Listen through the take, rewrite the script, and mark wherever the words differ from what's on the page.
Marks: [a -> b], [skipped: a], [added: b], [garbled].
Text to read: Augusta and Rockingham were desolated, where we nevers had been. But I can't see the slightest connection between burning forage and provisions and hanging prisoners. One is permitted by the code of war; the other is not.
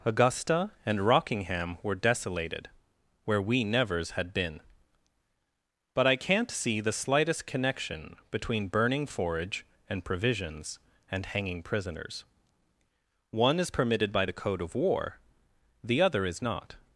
Augusta and Rockingham were desolated, where we nevers had been. But I can't see the slightest connection between burning forage and provisions and hanging prisoners. One is permitted by the code of war; the other is not.